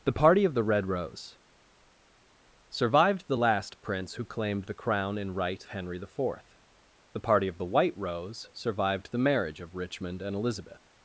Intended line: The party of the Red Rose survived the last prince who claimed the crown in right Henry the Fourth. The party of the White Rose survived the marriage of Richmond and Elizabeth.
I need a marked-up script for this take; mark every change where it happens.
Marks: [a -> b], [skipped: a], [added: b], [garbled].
The party of the Red Rose survived the last prince who claimed the crown in right Henry the Fourth. The party of the White Rose survived the marriage of Richmond and Elizabeth.